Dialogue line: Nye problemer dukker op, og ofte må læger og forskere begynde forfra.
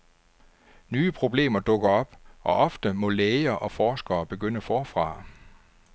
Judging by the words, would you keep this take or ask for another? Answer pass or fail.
pass